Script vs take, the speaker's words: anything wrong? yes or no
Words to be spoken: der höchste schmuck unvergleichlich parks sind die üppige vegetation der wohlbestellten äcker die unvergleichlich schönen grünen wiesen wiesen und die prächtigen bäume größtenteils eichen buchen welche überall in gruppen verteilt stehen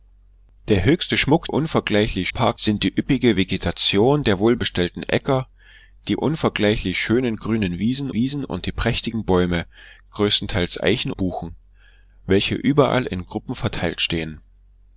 no